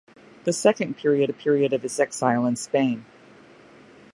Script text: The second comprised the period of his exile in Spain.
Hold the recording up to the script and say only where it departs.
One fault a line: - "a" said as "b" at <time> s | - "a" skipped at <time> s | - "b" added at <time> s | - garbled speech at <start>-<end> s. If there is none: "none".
- "comprised" said as "period" at 0.9 s